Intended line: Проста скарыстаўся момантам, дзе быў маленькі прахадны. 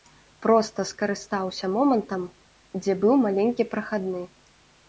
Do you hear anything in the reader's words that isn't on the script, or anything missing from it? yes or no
no